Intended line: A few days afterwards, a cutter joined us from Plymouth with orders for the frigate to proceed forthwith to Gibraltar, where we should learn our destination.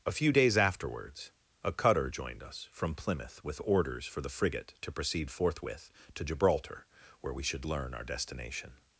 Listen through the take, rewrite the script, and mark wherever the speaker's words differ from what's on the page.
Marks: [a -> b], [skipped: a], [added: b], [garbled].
A few days afterwards, a cutter joined us from Plymouth with orders for the frigate to proceed forthwith to Gibraltar, where we should learn our destination.